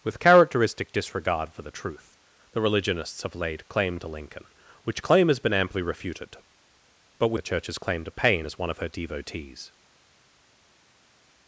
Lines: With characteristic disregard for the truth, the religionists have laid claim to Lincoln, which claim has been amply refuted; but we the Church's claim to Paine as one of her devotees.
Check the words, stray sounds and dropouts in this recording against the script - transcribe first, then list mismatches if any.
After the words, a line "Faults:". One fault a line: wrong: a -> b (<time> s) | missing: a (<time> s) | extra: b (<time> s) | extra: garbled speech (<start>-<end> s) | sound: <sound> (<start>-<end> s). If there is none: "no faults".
With characteristic disregard for the truth, the religionists have laid claim to Lincoln, which claim has been amply refuted; but we the Church's claim to Paine as one of her devotees.
Faults:
no faults